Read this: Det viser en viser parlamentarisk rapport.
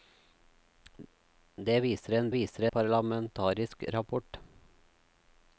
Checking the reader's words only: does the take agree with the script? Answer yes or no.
yes